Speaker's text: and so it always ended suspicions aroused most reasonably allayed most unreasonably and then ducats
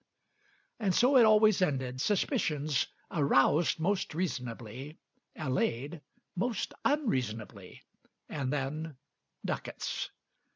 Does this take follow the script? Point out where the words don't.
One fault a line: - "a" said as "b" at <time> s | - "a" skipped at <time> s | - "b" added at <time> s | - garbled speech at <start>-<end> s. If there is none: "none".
none